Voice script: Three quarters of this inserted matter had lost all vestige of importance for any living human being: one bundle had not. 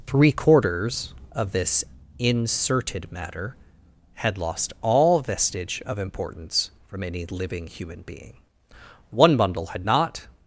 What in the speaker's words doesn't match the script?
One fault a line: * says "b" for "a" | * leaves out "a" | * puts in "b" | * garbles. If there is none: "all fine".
* says "from" for "for"